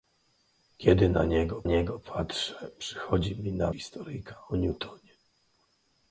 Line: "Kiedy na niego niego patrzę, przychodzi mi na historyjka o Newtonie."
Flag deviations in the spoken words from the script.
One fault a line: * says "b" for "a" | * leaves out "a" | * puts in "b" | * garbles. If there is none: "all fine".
all fine